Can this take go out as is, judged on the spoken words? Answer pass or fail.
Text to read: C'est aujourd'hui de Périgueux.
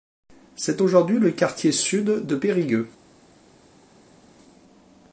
fail